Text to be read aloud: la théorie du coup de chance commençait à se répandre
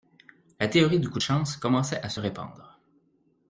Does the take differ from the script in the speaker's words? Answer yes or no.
no